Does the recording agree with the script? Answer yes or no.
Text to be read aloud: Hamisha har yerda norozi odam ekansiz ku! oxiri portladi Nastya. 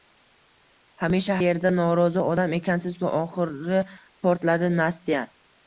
no